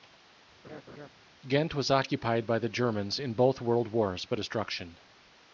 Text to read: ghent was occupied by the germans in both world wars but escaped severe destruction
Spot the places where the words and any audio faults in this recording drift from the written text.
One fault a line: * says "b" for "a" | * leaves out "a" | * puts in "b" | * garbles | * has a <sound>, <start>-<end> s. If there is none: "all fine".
* has a laugh, 0.6-1.1 s
* leaves out "escaped severe"